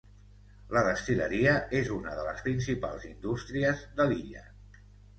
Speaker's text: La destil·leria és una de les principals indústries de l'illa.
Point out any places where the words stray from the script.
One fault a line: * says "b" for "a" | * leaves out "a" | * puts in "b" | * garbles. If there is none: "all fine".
all fine